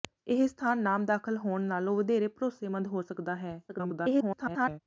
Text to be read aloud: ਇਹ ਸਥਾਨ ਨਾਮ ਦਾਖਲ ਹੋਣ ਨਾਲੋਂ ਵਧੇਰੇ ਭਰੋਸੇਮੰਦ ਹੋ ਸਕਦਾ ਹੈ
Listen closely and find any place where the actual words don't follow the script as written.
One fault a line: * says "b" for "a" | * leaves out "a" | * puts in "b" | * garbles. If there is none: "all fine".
* garbles